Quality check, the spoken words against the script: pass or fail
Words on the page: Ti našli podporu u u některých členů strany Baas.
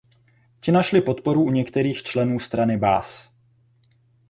fail